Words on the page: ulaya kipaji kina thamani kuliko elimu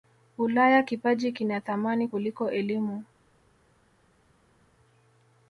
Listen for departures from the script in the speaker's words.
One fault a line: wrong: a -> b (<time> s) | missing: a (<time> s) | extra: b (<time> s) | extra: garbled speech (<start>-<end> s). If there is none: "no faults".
no faults